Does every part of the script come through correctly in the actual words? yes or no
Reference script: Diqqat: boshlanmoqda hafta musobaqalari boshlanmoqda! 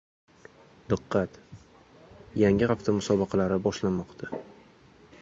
no